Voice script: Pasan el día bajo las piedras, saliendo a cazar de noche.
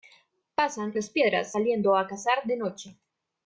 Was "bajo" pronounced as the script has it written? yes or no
no